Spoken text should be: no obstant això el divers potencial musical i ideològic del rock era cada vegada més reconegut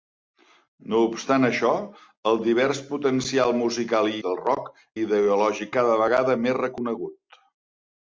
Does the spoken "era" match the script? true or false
false